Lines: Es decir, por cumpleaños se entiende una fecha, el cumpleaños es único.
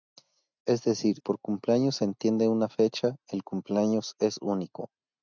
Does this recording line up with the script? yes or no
yes